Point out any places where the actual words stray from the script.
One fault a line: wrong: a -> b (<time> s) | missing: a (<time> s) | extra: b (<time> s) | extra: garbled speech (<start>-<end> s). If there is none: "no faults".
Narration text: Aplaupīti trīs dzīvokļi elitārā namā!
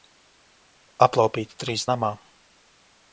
missing: dzīvokļi elitārā (1.9 s)